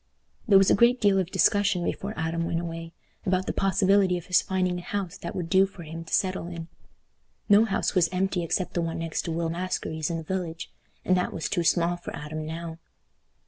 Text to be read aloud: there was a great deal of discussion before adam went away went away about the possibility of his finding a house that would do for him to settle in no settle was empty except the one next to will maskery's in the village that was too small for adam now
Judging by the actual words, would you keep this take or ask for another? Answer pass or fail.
fail